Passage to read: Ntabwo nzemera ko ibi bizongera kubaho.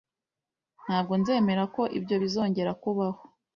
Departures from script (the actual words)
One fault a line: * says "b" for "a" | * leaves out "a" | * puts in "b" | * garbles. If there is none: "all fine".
* says "ibyo" for "ibi"